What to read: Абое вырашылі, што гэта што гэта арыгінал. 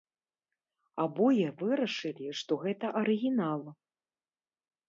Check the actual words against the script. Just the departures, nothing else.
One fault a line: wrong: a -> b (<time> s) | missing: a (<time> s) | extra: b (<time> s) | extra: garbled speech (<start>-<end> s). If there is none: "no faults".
missing: што гэта (2.9 s)